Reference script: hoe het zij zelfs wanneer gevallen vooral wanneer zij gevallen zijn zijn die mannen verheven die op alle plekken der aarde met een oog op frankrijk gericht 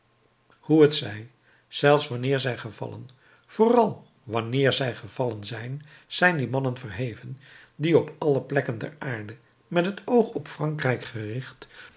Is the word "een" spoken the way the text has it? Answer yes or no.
no